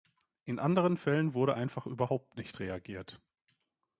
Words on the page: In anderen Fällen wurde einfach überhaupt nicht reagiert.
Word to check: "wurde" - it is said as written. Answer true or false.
true